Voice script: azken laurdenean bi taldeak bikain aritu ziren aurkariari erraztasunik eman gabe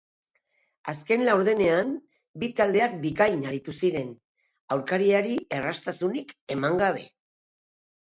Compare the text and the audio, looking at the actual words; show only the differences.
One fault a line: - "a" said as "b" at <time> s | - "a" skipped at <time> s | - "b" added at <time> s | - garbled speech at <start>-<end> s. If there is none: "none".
none